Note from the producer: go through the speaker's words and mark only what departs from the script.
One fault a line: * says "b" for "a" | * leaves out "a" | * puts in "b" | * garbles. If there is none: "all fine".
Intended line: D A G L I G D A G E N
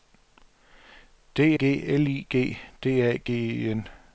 * leaves out "A"